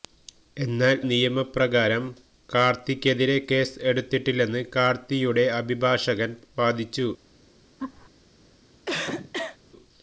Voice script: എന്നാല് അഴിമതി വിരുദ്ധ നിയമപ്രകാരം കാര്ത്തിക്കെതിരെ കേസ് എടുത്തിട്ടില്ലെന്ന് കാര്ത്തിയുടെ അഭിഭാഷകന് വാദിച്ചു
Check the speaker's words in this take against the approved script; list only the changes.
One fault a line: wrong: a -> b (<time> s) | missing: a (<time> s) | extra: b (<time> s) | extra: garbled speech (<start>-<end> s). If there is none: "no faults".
missing: അഴിമതി വിരുദ്ധ (1.0 s)